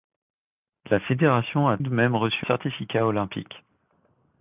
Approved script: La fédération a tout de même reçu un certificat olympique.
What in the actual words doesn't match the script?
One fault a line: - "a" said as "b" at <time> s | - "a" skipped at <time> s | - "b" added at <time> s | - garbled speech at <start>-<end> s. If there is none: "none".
- "tout" skipped at 1.8 s
- "un" skipped at 2.5 s